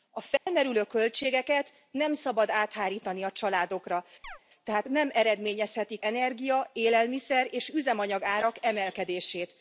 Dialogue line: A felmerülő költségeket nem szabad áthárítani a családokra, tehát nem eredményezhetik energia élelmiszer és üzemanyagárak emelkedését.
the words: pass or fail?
pass